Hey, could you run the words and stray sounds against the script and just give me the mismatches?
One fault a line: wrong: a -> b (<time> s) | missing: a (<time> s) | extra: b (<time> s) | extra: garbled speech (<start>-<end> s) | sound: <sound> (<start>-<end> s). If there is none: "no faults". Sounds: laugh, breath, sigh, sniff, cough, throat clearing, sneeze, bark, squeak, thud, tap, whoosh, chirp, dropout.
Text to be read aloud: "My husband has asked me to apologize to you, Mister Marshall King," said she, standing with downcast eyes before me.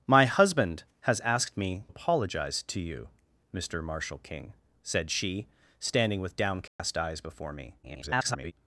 missing: to (1.8 s)
sound: dropout (6.7-6.8 s)
extra: garbled speech (7.8-8.5 s)